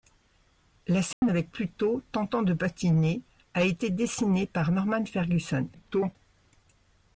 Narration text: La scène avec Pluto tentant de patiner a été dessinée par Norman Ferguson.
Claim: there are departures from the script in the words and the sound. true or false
true